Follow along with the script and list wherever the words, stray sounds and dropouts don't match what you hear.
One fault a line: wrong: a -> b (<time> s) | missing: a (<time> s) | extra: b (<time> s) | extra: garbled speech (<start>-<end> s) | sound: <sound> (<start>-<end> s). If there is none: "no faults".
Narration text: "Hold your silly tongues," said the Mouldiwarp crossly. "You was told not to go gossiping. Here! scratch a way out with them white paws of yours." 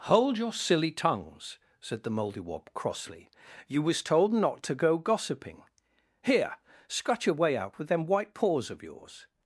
wrong: a -> your (7.3 s)